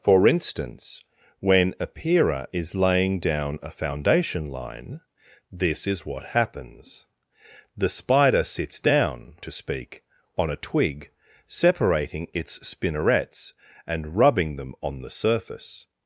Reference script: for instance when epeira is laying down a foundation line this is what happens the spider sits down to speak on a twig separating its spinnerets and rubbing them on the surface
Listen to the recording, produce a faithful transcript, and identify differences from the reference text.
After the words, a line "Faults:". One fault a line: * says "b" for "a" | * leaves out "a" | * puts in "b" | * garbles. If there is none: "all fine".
for instance when epeira is laying down a foundation line this is what happens the spider sits down to speak on a twig separating its spinnerets and rubbing them on the surface
Faults:
all fine